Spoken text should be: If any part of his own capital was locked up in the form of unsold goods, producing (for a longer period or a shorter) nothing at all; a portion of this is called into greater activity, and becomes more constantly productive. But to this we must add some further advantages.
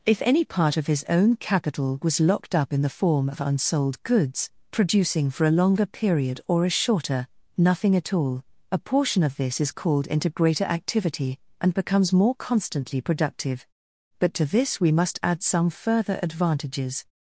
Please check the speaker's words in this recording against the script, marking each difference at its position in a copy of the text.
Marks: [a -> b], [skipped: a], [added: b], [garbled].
If any part of his own capital was locked up in the form of unsold goods, producing (for a longer period or a shorter) nothing at all; a portion of this is called into greater activity, and becomes more constantly productive. But to this we must add some further advantages.